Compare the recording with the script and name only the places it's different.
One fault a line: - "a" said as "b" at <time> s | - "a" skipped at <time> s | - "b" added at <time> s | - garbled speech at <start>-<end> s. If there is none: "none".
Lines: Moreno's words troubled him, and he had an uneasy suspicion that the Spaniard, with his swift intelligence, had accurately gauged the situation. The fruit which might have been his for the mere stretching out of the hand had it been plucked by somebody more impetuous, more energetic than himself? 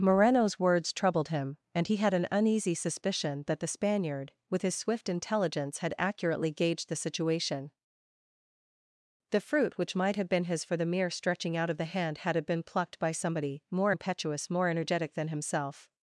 none